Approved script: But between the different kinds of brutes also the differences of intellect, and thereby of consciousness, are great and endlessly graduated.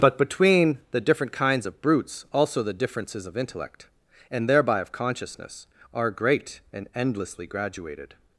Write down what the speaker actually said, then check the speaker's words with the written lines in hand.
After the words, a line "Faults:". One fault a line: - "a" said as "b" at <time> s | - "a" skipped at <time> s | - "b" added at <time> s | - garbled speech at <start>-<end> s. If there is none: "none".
But between the different kinds of brutes also the differences of intellect, and thereby of consciousness, are great and endlessly graduated.
Faults:
none